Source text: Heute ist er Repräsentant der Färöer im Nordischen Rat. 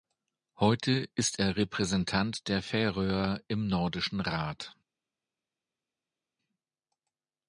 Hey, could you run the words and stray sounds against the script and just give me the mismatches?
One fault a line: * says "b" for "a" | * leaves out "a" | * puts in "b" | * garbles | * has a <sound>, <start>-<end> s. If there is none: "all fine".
all fine